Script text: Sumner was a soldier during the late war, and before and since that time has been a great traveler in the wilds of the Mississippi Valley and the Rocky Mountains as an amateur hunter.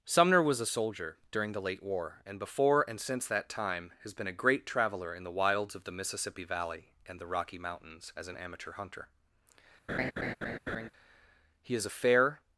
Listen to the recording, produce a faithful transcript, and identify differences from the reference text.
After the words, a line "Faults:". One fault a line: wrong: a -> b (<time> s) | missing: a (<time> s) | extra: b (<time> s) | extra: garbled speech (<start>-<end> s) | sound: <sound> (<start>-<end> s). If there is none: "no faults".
Sumner was a soldier during the late war, and before and since that time has been a great traveler in the wilds of the Mississippi Valley and the Rocky Mountains as an amateur hunter. He is a fair
Faults:
sound: laugh (9.9-10.9 s)
extra: He is a fair (11.6 s)